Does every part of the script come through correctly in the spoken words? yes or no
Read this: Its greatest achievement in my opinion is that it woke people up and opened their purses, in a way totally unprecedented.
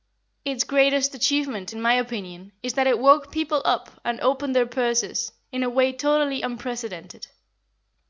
yes